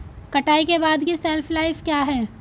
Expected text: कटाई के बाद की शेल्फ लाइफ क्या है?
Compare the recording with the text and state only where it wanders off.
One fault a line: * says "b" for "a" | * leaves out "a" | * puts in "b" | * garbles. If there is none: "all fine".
all fine